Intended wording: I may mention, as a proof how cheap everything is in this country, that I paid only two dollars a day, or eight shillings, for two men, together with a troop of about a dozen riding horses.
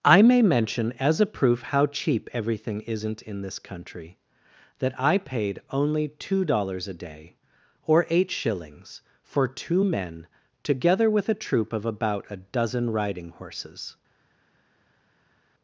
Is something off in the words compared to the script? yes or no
yes